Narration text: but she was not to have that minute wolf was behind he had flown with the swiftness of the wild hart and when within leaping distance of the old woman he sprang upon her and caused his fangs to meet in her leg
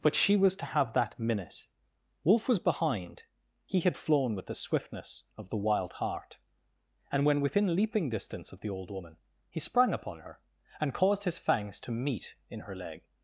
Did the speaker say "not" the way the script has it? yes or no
no